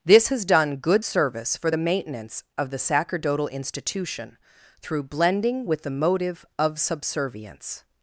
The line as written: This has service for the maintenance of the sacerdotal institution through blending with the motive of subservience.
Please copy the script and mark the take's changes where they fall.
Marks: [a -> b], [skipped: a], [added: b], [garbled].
This has [added: done good] service for the maintenance of the sacerdotal institution through blending with the motive of subservience.